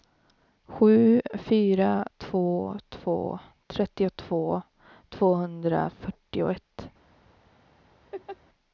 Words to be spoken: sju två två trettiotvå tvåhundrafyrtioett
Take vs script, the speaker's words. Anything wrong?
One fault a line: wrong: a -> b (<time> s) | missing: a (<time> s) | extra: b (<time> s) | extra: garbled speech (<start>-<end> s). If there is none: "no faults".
extra: fyra (1.3 s)